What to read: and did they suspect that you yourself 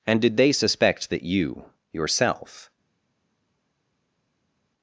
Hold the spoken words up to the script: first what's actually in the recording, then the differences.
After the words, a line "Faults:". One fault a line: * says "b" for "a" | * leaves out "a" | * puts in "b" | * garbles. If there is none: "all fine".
and did they suspect that you yourself
Faults:
all fine